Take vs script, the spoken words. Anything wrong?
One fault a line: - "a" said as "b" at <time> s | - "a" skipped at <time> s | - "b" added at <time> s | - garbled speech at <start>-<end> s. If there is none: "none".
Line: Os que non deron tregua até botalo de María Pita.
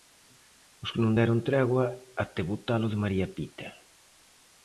none